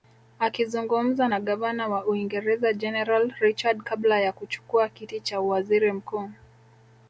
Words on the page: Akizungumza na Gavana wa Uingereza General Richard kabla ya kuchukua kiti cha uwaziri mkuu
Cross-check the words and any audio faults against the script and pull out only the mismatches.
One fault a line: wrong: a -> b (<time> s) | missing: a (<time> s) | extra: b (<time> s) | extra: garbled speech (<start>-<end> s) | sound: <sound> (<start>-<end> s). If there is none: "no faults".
no faults